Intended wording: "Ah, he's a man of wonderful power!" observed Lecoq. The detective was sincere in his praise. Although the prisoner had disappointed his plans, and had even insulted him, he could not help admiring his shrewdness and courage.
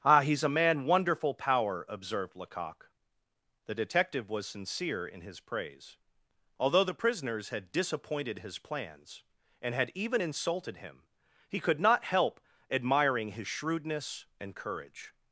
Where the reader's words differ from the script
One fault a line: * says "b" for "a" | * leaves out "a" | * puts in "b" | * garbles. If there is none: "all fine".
* leaves out "of"
* says "prisoners" for "prisoner"